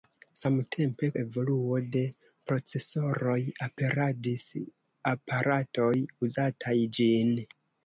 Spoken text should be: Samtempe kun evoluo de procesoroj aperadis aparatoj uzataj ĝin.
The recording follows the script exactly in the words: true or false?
false